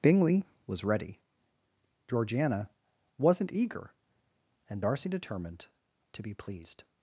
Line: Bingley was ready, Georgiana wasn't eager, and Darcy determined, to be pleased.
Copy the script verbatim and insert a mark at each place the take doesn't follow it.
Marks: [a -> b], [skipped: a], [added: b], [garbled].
Bingley was ready, Georgiana wasn't eager, and Darcy determined, to be pleased.